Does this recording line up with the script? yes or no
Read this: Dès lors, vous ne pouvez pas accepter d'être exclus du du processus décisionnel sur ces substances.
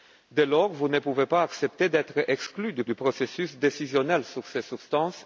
yes